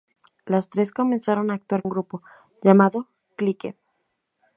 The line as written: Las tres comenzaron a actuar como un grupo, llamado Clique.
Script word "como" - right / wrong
wrong